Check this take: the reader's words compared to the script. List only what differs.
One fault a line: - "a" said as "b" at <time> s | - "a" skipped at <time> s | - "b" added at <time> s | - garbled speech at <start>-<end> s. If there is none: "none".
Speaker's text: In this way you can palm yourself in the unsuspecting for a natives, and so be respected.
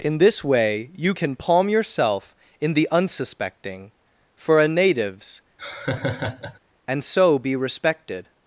none